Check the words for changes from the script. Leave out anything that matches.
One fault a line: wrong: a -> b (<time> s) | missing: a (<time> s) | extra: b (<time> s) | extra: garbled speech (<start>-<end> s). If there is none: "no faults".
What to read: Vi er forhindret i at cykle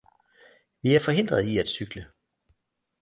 no faults